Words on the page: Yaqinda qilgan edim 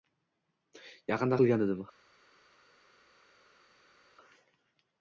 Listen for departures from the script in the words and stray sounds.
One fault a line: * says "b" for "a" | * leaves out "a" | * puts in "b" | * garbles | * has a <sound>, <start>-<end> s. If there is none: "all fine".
all fine